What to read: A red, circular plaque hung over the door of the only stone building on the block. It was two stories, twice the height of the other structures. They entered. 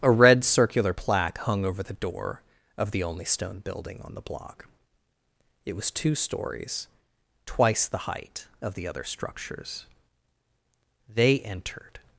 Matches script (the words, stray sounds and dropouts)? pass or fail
pass